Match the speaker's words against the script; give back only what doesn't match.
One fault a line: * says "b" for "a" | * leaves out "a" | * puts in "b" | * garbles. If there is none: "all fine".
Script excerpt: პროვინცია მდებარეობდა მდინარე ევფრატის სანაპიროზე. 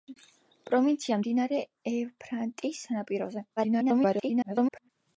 * leaves out "მდებარეობდა"
* garbles